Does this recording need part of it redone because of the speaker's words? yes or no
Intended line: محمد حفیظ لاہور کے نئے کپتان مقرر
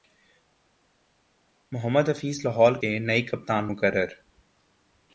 no